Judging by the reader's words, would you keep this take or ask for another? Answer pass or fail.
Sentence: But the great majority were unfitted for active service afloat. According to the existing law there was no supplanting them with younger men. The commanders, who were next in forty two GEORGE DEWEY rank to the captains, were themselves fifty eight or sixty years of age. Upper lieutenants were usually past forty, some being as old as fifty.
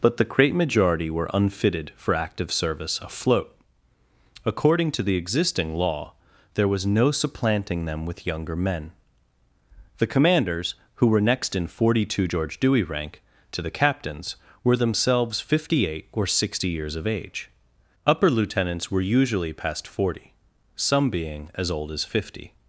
pass